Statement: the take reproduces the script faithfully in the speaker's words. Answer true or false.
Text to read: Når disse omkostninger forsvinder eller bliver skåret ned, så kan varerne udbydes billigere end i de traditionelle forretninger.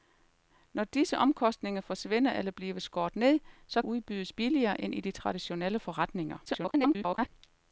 false